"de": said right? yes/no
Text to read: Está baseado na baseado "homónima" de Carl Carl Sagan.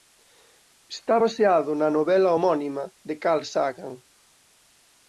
yes